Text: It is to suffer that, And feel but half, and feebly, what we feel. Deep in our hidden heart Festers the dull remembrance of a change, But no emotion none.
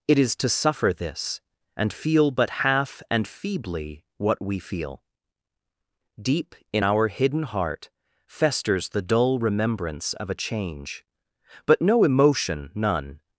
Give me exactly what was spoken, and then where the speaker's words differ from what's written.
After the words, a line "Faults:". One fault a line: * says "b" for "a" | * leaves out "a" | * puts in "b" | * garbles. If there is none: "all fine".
It is to suffer this, And feel but half, and feebly, what we feel. Deep in our hidden heart Festers the dull remembrance of a change, But no emotion none.
Faults:
* says "this" for "that"